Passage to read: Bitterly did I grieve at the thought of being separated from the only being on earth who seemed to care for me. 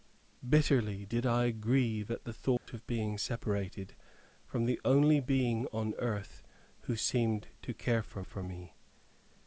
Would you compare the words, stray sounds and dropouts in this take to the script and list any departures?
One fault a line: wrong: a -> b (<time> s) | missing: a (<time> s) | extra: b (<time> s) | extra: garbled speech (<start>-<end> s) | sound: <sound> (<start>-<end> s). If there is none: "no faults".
sound: dropout (2.6-2.7 s)
extra: for (8.2 s)